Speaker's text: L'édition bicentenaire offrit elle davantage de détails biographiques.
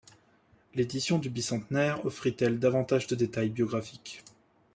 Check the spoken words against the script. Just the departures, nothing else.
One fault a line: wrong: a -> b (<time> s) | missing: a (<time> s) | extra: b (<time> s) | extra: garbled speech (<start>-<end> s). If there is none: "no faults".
extra: du (1.2 s)